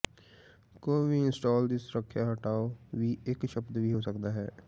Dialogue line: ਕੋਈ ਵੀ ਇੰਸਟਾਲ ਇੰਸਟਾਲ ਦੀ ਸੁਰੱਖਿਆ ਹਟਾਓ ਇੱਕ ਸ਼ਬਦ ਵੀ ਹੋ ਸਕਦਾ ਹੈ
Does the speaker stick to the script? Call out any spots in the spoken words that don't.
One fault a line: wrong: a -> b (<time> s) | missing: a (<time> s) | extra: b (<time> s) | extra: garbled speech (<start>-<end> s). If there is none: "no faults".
missing: ਇੰਸਟਾਲ (1.7 s)
extra: ਵੀ (2.9 s)